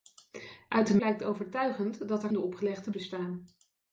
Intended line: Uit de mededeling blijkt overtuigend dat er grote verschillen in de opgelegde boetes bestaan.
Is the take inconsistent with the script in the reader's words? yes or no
yes